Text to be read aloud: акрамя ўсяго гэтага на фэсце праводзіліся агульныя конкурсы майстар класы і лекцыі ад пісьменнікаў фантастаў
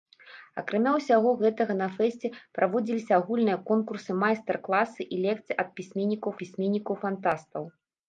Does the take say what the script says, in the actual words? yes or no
no